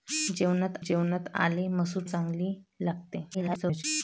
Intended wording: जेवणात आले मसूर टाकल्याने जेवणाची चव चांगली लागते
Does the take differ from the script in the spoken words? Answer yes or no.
yes